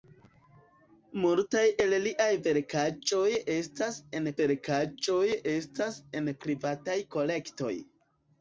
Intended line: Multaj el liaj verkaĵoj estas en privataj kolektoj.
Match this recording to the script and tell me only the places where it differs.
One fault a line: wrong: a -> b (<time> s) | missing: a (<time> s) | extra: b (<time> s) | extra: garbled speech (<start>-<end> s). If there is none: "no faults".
extra: verkaĵoj estas en (4.4 s)